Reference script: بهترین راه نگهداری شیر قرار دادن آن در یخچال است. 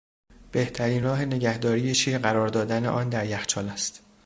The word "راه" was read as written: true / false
true